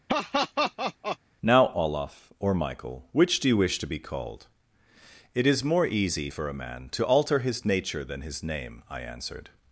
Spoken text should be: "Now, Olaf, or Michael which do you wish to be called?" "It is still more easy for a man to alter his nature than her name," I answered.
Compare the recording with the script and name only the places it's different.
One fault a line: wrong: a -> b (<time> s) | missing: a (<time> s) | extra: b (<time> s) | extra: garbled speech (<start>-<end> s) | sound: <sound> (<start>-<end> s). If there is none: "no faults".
sound: laugh (0.1-1.2 s)
missing: still (5.6 s)
wrong: her -> his (8.2 s)